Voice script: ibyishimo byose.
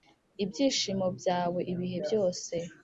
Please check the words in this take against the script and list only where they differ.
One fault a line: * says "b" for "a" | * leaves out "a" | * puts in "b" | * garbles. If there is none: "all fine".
* puts in "byawe ibihe"